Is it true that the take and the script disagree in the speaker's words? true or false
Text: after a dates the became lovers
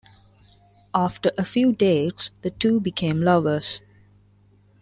true